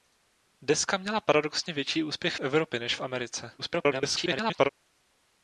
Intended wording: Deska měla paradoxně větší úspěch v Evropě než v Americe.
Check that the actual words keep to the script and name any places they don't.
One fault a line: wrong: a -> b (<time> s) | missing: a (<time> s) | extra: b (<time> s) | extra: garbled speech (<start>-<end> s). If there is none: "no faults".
extra: garbled speech (3.6-4.7 s)